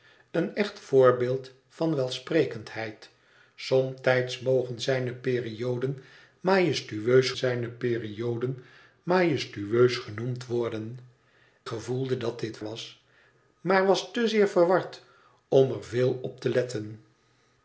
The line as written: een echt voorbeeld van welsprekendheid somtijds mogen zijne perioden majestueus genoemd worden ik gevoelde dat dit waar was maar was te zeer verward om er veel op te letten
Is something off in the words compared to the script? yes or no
yes